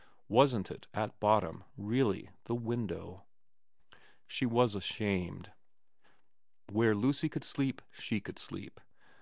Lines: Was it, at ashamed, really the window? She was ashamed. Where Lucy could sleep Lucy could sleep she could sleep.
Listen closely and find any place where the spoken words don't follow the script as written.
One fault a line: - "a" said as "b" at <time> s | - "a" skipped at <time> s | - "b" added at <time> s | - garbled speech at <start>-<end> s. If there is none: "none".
- "Was" said as "Wasn't" at 0.3 s
- "ashamed" said as "bottom" at 1.2 s
- "Lucy could sleep" skipped at 7.8 s